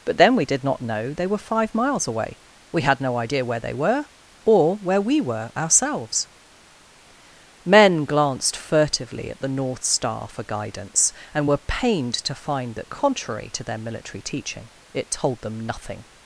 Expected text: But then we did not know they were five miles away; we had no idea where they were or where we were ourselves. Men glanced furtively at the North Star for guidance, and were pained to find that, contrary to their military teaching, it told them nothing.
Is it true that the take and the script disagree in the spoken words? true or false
false